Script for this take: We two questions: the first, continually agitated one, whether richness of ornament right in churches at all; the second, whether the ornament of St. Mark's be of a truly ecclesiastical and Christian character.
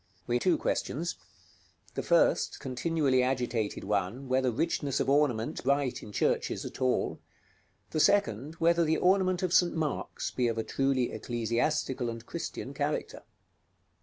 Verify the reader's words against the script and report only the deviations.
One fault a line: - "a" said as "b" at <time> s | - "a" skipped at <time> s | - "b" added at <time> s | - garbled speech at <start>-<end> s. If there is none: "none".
none